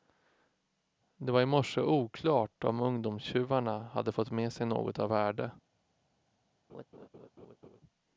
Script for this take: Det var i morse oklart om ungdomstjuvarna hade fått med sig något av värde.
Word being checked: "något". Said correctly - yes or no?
yes